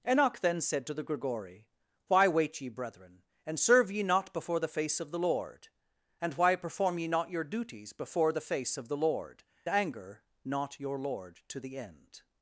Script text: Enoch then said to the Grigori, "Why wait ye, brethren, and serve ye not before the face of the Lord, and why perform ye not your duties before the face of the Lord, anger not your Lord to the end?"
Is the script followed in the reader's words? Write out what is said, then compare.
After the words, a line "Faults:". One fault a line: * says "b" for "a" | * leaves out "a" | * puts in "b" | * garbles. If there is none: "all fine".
Enoch then said to the Grigori, "Why wait ye, brethren, and serve ye not before the face of the Lord, and why perform ye not your duties before the face of the Lord, anger not your Lord to the end?"
Faults:
all fine